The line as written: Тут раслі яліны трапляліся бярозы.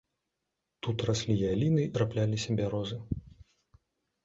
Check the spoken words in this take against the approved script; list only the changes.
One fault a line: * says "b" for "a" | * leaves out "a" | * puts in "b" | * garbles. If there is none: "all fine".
all fine